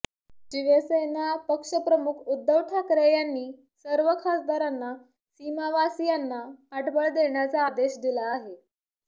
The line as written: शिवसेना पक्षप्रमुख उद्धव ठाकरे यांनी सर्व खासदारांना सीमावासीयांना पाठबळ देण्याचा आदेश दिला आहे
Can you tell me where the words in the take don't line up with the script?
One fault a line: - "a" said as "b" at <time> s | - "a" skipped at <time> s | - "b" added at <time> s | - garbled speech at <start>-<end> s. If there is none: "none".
none